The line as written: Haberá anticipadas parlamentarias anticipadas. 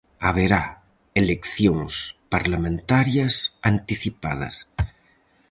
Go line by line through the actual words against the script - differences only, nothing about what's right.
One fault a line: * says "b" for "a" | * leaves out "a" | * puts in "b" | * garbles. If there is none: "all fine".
* says "eleccións" for "anticipadas"